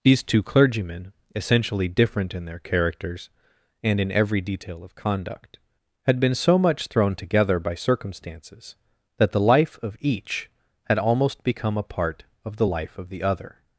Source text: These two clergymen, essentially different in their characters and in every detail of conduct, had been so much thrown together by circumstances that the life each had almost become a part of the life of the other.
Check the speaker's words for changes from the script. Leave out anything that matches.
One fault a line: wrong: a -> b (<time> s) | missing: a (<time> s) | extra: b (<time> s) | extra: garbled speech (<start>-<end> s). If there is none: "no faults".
extra: of (9.8 s)